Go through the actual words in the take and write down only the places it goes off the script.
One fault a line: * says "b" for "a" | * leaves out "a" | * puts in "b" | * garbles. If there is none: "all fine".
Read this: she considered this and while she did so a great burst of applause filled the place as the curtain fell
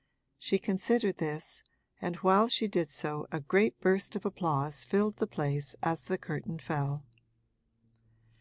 all fine